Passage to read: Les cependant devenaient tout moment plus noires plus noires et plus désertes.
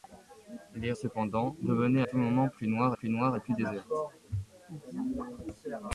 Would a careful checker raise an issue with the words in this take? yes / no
no